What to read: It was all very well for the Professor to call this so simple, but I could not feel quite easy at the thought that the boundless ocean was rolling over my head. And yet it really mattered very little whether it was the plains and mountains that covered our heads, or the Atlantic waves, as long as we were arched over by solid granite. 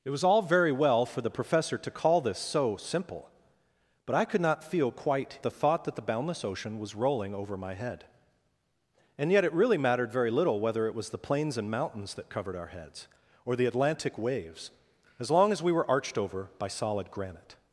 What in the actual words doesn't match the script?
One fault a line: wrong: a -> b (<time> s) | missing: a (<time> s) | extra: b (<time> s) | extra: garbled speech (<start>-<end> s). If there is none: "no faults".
missing: easy at (5.4 s)